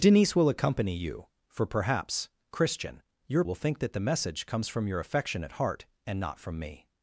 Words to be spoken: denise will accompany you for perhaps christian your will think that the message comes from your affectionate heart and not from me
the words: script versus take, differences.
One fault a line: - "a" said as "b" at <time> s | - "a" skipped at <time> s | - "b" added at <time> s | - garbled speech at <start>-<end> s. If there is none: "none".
none